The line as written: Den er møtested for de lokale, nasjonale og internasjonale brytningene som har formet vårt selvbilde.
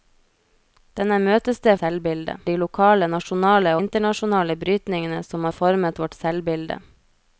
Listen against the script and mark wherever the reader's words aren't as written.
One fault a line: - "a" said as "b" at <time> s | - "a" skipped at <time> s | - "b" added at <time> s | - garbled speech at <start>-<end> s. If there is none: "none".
- "for" said as "selvbilde" at 1.8 s
- "og" skipped at 3.7 s